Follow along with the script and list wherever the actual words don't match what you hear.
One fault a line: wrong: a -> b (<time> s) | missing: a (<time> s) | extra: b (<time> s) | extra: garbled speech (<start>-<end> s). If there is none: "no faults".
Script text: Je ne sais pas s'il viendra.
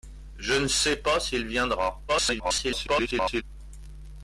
extra: garbled speech (2.1-3.4 s)